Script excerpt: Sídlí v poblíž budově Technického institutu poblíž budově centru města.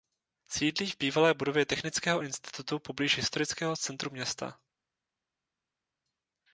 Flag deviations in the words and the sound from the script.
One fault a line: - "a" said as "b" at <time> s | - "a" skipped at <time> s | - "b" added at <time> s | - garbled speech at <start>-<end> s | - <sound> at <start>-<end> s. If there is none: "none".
- "poblíž" said as "bývalé" at 1.0 s
- "budově" said as "historického" at 3.2 s